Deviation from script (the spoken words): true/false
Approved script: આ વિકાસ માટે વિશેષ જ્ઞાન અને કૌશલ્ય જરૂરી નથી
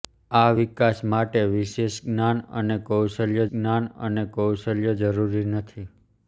true